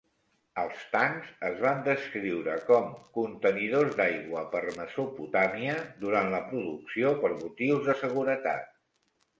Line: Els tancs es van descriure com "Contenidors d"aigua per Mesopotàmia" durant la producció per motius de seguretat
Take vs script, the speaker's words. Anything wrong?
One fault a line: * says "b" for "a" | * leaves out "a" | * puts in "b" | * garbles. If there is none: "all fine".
all fine